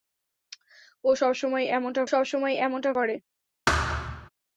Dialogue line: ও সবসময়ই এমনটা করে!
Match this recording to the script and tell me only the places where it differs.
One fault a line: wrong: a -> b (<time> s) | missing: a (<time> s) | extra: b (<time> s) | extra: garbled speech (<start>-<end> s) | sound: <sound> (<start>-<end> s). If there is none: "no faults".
extra: সবসময়ই এমনটা (2.1 s)
sound: thud (3.7-4.3 s)